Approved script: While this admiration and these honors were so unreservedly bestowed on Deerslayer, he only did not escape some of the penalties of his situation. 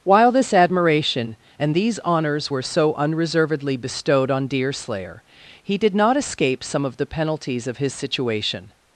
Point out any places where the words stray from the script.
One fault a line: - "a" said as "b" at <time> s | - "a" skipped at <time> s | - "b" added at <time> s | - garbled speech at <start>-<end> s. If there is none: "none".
- "only" skipped at 5.8 s